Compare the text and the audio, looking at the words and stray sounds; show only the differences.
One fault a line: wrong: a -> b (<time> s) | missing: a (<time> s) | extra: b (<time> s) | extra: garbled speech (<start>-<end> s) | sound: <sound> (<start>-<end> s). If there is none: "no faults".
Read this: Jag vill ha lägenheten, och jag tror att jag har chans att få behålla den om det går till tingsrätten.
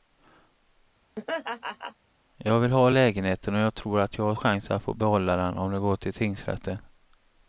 sound: laugh (1.2-2.0 s)